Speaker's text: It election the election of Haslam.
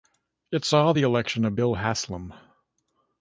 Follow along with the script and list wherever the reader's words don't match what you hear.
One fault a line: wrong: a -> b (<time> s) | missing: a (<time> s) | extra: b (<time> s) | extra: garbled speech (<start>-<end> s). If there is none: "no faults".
wrong: election -> saw (0.7 s)
extra: Bill (1.5 s)